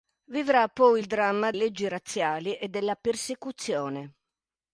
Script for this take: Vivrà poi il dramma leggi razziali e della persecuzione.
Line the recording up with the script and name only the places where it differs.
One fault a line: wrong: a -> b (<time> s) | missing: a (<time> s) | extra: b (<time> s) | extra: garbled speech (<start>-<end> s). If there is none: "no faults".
no faults